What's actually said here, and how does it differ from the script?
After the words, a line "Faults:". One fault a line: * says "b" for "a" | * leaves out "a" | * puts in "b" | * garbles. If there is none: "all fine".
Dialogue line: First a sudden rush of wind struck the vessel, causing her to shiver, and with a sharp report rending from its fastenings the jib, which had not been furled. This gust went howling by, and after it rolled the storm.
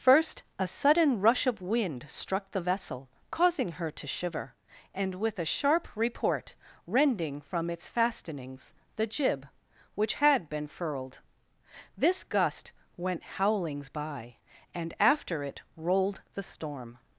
First a sudden rush of wind struck the vessel, causing her to shiver, and with a sharp report rending from its fastenings the jib, which had been furled. This gust went howlings by, and after it rolled the storm.
Faults:
* leaves out "not"
* says "howlings" for "howling"